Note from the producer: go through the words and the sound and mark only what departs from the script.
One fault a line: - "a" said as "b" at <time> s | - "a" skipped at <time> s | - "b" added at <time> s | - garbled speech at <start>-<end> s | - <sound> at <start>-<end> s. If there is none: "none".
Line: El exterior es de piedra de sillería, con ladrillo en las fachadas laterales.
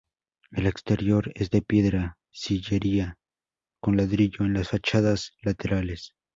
- "de" skipped at 2.2 s